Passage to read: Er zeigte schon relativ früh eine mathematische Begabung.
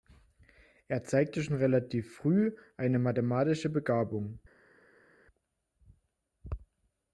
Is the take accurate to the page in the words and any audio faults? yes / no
yes